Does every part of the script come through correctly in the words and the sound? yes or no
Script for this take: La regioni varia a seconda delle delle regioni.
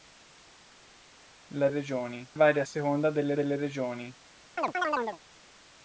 no